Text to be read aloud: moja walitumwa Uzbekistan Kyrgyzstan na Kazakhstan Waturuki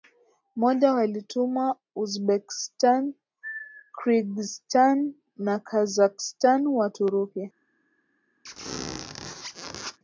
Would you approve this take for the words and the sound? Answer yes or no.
no